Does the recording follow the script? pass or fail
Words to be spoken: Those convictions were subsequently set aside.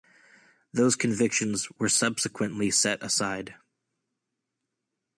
pass